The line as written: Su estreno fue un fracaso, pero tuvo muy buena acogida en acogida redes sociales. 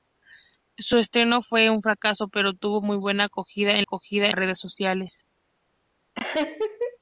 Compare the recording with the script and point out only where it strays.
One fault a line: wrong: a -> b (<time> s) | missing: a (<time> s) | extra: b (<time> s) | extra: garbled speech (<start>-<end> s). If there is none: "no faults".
no faults